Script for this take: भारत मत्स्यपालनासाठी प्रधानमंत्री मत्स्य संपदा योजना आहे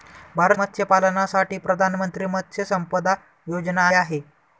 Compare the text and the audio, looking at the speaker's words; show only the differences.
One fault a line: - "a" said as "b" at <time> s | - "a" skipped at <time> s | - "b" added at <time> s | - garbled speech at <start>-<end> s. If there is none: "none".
none